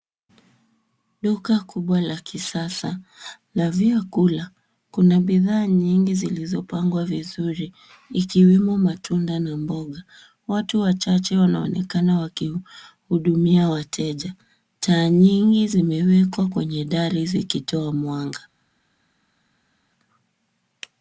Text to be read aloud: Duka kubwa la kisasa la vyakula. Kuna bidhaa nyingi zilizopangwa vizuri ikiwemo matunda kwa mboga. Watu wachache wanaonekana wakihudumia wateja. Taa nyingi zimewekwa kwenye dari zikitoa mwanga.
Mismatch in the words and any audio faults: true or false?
true